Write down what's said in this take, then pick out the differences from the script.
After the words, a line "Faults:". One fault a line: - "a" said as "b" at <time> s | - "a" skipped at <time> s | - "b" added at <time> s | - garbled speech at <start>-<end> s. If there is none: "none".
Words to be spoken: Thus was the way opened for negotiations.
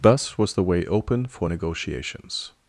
Thus was the way open for negotiations.
Faults:
- "opened" said as "open" at 0.8 s